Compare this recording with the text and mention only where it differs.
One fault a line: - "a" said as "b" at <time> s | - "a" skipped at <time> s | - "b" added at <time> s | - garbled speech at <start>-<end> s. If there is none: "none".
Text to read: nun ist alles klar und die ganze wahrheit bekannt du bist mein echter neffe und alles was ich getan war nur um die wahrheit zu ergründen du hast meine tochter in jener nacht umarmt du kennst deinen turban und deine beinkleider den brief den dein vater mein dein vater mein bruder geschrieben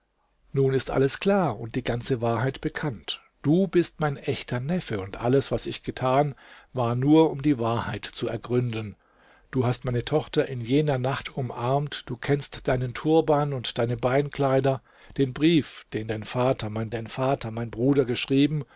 none